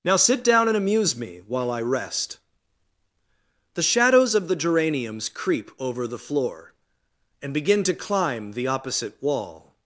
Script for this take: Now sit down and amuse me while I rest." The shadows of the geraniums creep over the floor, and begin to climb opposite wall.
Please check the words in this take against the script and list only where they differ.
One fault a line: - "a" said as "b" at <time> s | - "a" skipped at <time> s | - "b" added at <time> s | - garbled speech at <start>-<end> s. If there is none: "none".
- "the" added at 8.5 s